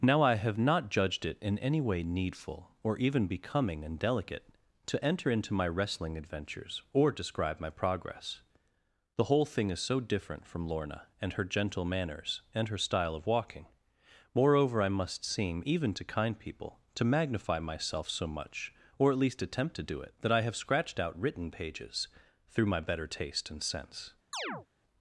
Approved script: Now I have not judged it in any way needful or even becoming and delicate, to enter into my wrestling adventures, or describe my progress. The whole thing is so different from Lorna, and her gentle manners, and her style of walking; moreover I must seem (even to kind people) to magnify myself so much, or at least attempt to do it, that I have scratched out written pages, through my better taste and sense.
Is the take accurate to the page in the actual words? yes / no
yes